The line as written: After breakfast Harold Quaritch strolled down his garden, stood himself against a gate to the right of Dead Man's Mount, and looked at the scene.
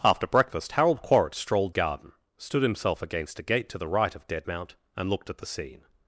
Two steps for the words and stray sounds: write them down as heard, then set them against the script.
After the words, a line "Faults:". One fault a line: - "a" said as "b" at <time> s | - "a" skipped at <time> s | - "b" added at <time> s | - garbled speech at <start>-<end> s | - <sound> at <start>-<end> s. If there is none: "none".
After breakfast Harold Quaritch strolled garden, stood himself against a gate to the right of Dead Mount, and looked at the scene.
Faults:
- "down his" skipped at 1.7 s
- "Man's" skipped at 4.5 s